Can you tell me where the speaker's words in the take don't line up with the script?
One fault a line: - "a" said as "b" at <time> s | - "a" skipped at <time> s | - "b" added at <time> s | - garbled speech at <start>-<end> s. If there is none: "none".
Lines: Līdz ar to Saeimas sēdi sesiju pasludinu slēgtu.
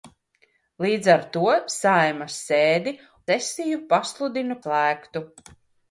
none